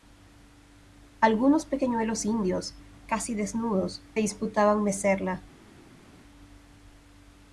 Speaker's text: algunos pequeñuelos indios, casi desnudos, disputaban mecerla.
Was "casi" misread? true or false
false